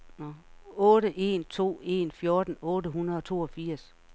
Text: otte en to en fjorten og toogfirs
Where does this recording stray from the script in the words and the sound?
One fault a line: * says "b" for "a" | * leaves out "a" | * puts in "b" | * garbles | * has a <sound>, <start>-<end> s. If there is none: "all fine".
* puts in "otte hundrede"